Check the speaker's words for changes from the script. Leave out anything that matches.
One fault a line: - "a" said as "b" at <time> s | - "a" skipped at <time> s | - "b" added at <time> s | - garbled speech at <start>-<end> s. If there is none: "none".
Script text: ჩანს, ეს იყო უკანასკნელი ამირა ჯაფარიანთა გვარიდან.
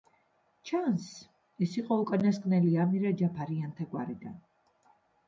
none